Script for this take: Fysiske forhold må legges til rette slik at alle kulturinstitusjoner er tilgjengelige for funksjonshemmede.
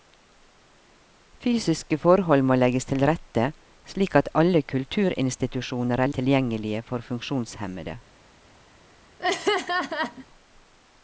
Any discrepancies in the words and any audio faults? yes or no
yes